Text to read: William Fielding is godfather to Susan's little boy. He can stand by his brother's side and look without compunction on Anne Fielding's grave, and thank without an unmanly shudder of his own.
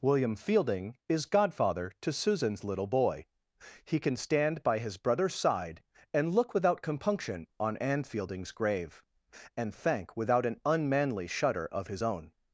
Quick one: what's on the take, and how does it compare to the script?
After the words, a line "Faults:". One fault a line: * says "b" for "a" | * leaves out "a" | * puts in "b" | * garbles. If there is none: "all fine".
William Fielding is godfather to Susan's little boy. He can stand by his brother's side and look without compunction on Anne Fielding's grave, and thank without an unmanly shudder of his own.
Faults:
all fine